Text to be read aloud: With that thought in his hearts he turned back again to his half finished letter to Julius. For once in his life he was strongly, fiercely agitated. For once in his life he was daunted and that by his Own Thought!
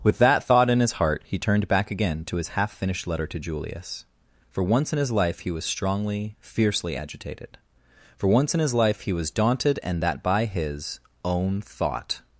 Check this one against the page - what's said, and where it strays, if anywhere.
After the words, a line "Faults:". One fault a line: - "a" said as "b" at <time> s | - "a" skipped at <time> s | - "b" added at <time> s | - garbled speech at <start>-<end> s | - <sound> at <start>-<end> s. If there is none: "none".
With that thought in his heart he turned back again to his half finished letter to Julius. For once in his life he was strongly, fiercely agitated. For once in his life he was daunted and that by his Own Thought!
Faults:
- "hearts" said as "heart" at 0.9 s